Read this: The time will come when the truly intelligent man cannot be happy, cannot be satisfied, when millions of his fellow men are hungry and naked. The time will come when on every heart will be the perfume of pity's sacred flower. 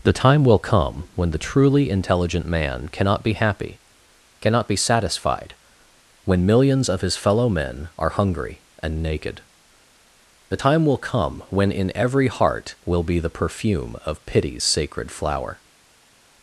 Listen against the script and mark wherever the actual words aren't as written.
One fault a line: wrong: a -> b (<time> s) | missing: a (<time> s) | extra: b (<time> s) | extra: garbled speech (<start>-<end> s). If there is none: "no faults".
wrong: on -> in (11.7 s)